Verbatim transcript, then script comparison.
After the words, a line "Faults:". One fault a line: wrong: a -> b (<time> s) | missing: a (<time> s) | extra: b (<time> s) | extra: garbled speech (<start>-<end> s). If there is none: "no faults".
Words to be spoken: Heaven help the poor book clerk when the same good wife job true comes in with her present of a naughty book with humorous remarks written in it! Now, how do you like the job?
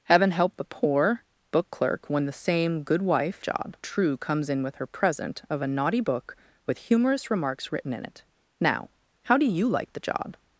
Heaven help the poor book clerk when the same good wife job true comes in with her present of a naughty book with humorous remarks written in it! Now, how do you like the job?
Faults:
no faults